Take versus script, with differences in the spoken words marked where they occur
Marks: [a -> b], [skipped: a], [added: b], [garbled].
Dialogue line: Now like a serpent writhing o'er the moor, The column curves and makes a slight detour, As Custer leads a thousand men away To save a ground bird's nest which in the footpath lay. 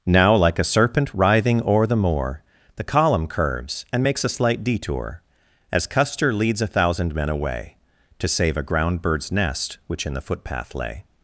Now like a serpent writhing o'er the moor, The column curves and makes a slight detour, As Custer leads a thousand men away To save a ground bird's nest which in the footpath lay.